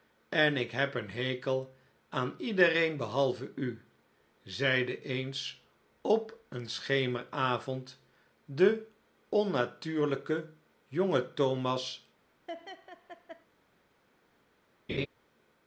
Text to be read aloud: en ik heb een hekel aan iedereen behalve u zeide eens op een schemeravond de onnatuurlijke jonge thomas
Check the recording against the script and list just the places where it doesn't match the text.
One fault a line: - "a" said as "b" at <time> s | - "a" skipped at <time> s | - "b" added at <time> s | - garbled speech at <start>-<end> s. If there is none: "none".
none